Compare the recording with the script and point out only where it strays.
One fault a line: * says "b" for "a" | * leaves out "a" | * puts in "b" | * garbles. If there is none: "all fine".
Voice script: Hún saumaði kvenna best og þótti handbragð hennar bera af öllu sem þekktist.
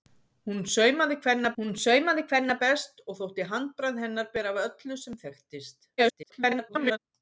* puts in "hún saumaði kvenna"
* garbles